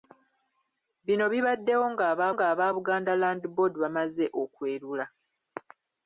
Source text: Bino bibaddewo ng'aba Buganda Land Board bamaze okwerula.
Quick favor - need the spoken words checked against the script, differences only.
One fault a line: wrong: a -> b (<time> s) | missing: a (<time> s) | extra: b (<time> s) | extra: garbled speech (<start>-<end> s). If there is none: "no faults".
extra: ng'aba (2.3 s)